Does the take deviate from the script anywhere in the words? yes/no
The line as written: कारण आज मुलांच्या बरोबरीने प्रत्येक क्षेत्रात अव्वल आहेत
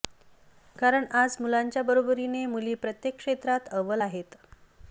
yes